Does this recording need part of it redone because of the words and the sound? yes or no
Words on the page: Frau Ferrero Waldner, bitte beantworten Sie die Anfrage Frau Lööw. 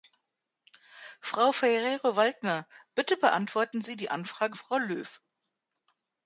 no